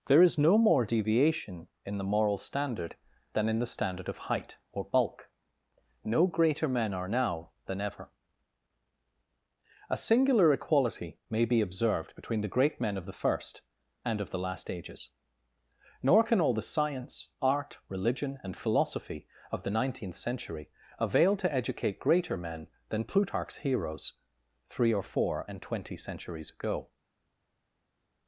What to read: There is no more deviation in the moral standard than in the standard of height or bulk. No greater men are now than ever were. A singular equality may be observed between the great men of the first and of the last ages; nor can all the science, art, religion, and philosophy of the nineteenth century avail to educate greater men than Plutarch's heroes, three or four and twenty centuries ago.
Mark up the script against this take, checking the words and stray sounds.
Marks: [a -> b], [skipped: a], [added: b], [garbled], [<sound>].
There is no more deviation in the moral standard than in the standard of height or bulk. No greater men are now than ever [skipped: were.] A singular equality may be observed between the great men of the first and of the last ages; nor can all the science, art, religion, and philosophy of the nineteenth century avail to educate greater men than Plutarch's heroes, three or four and twenty centuries ago.